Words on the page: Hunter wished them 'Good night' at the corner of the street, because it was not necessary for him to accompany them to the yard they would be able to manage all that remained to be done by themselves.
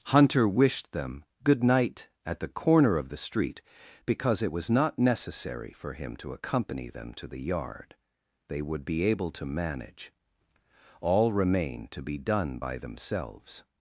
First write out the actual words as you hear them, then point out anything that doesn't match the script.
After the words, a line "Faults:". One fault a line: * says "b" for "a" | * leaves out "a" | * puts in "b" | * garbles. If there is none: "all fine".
Hunter wished them 'Good night' at the corner of the street, because it was not necessary for him to accompany them to the yard they would be able to manage all remained to be done by themselves.
Faults:
* leaves out "that"